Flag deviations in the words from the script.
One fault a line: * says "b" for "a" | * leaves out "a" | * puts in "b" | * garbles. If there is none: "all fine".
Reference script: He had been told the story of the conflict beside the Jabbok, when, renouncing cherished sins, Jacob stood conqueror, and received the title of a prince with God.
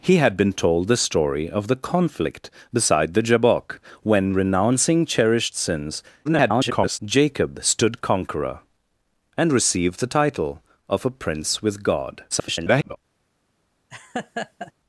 * garbles
* garbles